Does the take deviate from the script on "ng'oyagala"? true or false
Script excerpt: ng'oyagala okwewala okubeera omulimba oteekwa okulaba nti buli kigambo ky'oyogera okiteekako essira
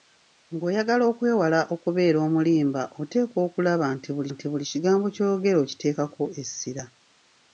false